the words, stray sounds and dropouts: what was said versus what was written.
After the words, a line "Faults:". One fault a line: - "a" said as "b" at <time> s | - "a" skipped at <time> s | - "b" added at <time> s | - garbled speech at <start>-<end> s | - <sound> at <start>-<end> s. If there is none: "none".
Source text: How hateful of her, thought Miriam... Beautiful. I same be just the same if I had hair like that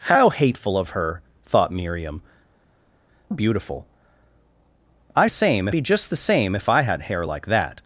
How hateful of her, thought Miriam... Beautiful. I same be just the same if I had hair like that
Faults:
none